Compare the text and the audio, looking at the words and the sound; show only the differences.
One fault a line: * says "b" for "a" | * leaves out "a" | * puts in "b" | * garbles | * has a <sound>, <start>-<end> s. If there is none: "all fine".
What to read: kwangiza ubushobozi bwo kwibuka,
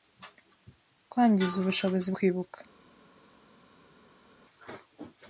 * leaves out "bwo"